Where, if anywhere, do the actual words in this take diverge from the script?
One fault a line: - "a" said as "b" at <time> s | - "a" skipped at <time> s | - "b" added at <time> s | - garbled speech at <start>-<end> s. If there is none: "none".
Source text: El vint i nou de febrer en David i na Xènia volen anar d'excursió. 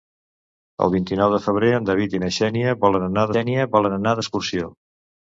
- "Xènia volen anar" added at 3.3 s